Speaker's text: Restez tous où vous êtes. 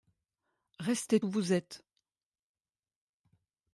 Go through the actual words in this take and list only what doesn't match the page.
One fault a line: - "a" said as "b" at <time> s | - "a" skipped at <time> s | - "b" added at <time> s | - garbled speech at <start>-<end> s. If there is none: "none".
- "tous" skipped at 1.2 s